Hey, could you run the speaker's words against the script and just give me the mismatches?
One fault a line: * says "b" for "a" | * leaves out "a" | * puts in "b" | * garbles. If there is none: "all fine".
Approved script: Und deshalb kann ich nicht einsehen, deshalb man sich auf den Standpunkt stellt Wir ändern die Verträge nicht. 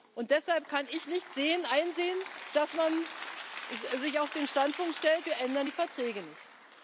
* says "dass" for "deshalb"